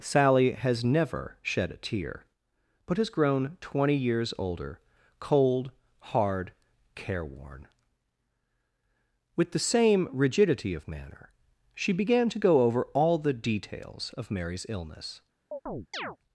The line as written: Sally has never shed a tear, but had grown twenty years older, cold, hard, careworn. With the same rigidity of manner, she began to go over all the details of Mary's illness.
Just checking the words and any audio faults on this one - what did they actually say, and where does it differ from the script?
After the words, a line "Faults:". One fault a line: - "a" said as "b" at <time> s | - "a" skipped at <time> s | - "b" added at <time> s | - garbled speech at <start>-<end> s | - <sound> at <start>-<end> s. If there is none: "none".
Sally has never shed a tear, but has grown twenty years older, cold, hard, careworn. With the same rigidity of manner, she began to go over all the details of Mary's illness.
Faults:
- "had" said as "has" at 3.0 s
- chirp at 15.5-16.2 s